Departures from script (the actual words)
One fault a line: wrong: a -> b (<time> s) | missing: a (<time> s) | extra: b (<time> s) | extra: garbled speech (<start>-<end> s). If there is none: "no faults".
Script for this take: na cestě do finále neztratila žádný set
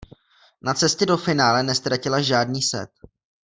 no faults